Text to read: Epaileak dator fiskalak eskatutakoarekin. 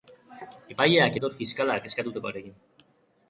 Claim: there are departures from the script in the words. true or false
false